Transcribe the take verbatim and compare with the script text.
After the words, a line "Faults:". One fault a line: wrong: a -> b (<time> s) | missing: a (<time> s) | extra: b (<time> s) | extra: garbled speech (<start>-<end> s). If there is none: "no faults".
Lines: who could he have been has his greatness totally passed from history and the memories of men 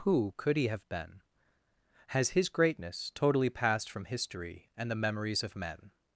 who could he have been has his greatness totally passed from history and the memories of men
Faults:
no faults